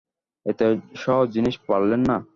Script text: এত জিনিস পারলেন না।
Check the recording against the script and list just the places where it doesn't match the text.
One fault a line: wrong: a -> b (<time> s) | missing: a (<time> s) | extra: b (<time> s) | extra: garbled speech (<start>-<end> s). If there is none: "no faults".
extra: সহজ (0.9 s)